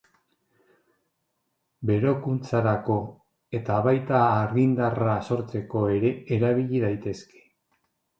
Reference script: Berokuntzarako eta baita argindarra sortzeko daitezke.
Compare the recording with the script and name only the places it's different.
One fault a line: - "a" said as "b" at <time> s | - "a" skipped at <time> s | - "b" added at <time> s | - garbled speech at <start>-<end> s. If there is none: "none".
- "ere erabili" added at 6.0 s